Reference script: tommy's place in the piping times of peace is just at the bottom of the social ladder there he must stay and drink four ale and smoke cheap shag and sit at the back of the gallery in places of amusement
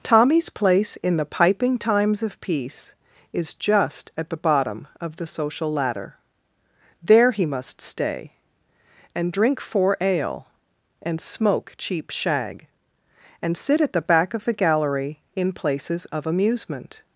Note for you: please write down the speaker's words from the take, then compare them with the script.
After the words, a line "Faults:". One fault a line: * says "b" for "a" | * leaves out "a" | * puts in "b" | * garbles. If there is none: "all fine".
tommy's place in the piping times of peace is just at the bottom of the social ladder there he must stay and drink four ale and smoke cheap shag and sit at the back of the gallery in places of amusement
Faults:
all fine